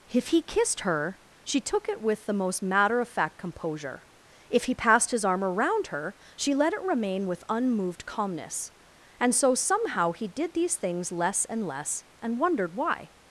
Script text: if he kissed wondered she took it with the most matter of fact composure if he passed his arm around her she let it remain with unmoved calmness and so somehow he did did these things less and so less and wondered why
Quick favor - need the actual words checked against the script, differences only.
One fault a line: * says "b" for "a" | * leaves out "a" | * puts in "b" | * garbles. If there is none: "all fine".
* says "her" for "wondered"
* leaves out "did"
* leaves out "so"